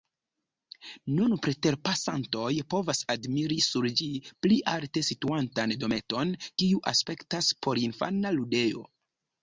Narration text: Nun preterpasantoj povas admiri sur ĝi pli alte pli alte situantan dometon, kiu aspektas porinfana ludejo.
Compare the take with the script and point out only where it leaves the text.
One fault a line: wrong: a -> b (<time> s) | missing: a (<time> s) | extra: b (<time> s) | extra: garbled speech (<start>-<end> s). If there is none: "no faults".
missing: pli alte (5.1 s)